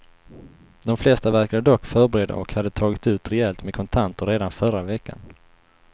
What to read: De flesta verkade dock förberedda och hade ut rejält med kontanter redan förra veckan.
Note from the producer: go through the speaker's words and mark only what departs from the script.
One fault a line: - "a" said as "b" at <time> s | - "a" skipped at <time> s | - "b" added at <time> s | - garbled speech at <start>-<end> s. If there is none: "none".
- "tagit" added at 2.7 s